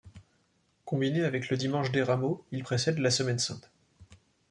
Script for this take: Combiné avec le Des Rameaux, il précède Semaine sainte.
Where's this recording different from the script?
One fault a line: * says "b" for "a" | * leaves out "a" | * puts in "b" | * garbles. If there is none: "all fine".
* puts in "Dimanche"
* puts in "la"